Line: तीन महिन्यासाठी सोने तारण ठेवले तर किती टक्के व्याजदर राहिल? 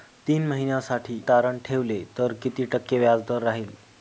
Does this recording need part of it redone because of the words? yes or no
yes